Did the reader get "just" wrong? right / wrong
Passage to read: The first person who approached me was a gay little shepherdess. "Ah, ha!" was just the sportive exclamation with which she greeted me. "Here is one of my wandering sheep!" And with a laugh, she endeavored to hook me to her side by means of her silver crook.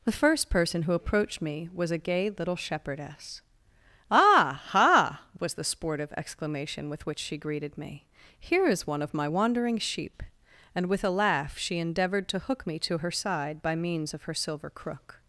wrong